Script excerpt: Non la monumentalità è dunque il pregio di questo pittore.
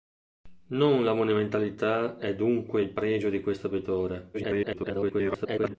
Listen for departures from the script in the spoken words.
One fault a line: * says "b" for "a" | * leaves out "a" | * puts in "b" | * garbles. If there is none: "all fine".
* garbles